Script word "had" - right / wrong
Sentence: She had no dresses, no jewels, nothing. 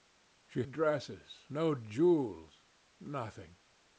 wrong